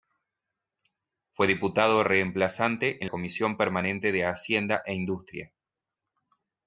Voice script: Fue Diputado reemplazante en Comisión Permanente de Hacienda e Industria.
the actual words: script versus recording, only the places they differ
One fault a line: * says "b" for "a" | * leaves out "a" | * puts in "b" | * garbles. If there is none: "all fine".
all fine